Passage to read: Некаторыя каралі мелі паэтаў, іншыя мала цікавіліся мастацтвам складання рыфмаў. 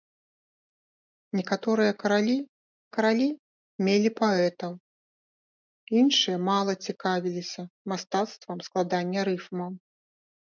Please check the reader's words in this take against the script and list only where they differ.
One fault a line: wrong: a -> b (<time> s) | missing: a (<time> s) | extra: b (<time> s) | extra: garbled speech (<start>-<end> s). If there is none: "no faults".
extra: каралі (3.0 s)